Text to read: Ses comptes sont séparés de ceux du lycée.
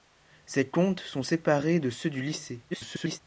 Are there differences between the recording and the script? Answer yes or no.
yes